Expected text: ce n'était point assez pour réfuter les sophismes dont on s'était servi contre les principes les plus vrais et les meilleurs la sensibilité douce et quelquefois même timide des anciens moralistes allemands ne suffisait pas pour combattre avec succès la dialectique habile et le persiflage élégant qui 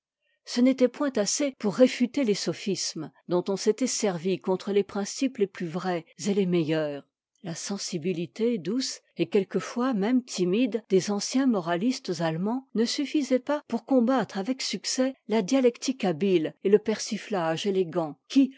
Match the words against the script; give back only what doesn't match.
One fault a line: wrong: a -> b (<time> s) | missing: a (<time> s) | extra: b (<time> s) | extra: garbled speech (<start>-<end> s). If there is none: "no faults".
no faults